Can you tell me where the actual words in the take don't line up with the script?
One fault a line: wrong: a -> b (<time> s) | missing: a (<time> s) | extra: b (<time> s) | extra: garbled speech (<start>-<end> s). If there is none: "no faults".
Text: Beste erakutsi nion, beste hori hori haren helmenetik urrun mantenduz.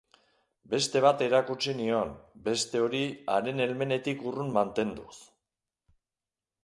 extra: bat (1.1 s)
missing: hori (3.0 s)